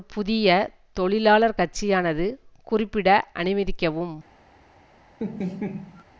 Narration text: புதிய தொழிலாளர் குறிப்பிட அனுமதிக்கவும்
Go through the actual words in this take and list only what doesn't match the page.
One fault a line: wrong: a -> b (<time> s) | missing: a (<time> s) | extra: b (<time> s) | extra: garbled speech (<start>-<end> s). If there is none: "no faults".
extra: கட்சியானது (1.6 s)